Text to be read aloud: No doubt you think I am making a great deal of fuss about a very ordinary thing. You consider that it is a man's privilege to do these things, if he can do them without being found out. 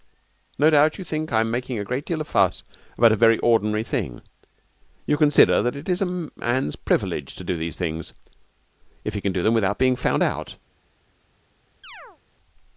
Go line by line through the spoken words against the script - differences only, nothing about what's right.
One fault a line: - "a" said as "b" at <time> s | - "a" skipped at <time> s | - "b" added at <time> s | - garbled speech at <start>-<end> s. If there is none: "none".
none